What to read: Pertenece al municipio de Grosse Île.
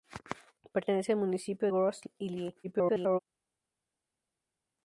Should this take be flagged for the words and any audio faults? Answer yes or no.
yes